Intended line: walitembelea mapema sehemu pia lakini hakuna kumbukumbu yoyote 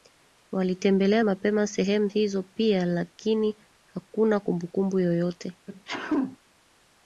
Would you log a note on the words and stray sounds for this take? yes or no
yes